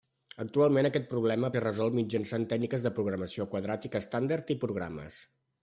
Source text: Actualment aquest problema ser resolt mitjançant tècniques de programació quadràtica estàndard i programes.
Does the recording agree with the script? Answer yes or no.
yes